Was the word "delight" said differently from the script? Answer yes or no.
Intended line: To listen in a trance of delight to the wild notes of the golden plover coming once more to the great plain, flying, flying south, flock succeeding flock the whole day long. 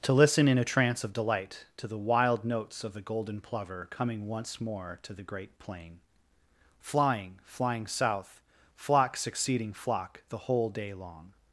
no